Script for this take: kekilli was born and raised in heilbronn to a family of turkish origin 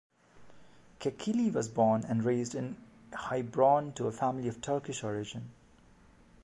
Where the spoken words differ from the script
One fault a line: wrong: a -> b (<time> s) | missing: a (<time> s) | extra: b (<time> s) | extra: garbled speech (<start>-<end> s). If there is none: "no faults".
no faults